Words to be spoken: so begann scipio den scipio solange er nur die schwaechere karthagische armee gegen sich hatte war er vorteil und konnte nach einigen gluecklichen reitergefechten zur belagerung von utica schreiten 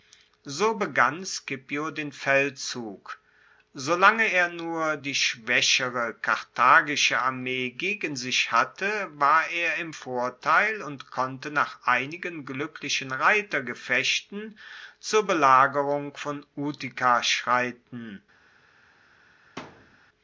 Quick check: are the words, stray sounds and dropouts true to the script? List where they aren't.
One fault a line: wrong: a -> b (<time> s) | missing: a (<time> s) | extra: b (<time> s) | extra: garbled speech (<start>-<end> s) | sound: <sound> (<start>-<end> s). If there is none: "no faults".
wrong: scipio -> feldzug (2.1 s)
extra: im (9.8 s)
sound: thud (19.6-20.0 s)